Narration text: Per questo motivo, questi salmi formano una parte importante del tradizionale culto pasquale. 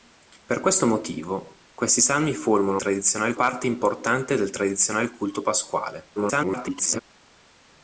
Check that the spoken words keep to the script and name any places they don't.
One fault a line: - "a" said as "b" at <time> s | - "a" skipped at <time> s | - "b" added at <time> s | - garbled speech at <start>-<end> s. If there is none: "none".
- "una" said as "tradizionale" at 2.8 s
- garbled speech at 6.2-7.0 s